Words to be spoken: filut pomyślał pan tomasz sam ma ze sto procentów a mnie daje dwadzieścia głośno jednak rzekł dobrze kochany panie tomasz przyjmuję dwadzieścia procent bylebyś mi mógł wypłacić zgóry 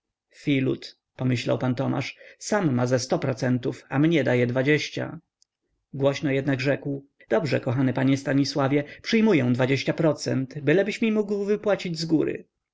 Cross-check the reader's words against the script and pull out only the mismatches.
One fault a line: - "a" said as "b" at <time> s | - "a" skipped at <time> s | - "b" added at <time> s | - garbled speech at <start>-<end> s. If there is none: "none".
- "tomasz" said as "stanisławie" at 8.2 s